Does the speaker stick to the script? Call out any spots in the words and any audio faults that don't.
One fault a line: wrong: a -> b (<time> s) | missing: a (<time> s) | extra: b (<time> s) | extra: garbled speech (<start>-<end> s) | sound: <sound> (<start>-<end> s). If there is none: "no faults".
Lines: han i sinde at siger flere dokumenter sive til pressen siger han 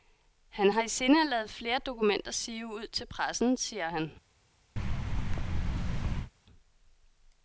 extra: har (0.7 s)
wrong: siger -> lade (1.3 s)
extra: ud (2.7 s)
sound: thud (4.8-6.3 s)